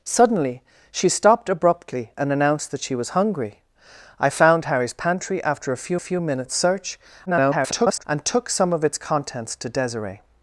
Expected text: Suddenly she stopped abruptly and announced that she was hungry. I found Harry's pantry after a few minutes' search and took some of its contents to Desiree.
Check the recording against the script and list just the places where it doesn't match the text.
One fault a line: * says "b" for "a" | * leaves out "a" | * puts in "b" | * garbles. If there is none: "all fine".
* puts in "few"
* garbles